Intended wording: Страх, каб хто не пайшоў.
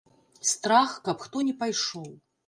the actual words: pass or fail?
pass